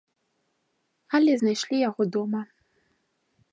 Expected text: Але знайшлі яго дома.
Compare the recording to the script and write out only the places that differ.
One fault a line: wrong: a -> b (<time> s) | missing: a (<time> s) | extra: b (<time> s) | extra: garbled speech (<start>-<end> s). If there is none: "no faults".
no faults